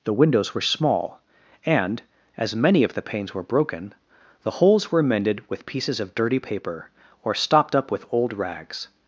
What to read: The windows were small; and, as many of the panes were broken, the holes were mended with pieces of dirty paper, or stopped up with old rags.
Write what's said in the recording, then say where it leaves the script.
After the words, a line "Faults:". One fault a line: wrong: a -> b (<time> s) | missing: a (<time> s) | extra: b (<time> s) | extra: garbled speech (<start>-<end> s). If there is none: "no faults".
The windows were small; and, as many of the panes were broken, the holes were mended with pieces of dirty paper, or stopped up with old rags.
Faults:
no faults